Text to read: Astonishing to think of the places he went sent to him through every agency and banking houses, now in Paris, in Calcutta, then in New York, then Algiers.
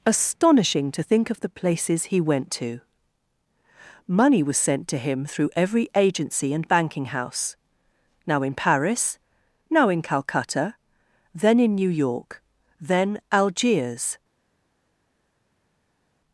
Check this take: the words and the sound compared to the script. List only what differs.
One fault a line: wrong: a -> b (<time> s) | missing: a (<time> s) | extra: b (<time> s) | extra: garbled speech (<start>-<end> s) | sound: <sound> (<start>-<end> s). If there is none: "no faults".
extra: to Money was (2.5 s)
wrong: houses -> house (7.1 s)
extra: now (9.7 s)